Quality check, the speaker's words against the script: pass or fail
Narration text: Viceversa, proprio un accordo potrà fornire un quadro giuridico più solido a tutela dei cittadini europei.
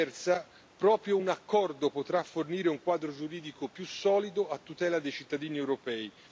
pass